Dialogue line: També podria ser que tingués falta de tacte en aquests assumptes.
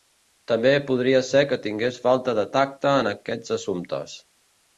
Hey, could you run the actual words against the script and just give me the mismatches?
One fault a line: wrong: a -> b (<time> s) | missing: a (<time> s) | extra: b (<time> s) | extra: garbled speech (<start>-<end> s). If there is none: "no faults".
no faults